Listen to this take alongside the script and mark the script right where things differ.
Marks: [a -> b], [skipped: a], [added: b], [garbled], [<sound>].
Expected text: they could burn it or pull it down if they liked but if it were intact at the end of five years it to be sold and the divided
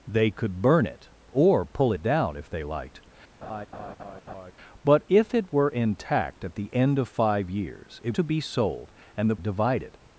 they could burn it or pull it down if they liked [laugh] but if it were intact at the end of five years it to be sold and the divided